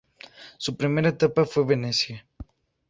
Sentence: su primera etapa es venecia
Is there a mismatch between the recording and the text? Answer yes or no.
yes